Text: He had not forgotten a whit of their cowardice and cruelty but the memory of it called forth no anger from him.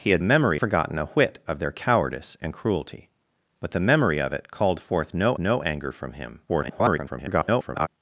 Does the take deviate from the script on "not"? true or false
true